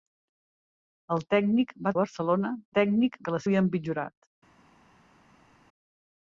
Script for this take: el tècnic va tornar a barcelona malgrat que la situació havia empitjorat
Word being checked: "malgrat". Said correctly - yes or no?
no